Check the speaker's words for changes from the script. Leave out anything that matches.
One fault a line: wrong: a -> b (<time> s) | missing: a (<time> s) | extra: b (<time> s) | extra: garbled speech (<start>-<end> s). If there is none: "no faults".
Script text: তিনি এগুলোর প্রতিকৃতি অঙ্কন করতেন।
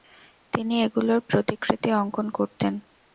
no faults